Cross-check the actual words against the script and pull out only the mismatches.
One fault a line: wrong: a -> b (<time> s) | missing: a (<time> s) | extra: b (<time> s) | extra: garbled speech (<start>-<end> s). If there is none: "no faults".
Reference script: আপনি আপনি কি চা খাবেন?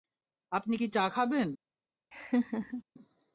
missing: আপনি (0.8 s)